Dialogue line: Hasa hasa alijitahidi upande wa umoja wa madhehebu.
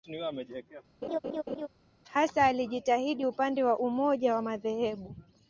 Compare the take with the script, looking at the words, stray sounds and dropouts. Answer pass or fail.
fail